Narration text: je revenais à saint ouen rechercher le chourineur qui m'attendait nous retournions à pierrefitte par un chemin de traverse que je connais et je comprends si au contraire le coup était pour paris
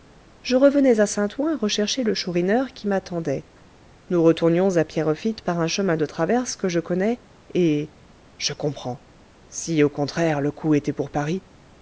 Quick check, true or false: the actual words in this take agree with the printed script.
true